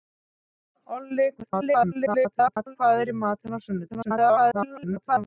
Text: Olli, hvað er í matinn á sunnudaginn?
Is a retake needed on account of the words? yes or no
yes